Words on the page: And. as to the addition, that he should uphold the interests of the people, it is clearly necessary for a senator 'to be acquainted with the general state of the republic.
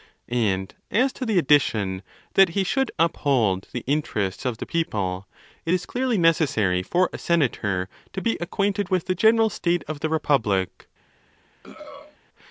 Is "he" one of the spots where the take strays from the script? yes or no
no